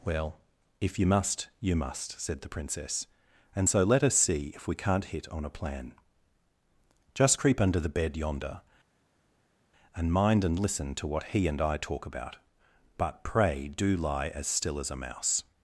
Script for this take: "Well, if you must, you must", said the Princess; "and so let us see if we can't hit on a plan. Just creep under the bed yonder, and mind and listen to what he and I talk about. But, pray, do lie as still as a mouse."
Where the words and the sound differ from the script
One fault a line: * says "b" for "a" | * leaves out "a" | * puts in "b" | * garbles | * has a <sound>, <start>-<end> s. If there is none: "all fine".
all fine